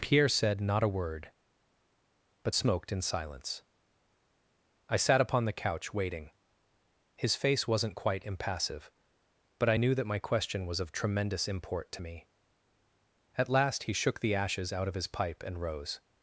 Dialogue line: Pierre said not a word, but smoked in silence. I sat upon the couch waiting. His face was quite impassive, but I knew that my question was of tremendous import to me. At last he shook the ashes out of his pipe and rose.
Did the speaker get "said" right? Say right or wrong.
right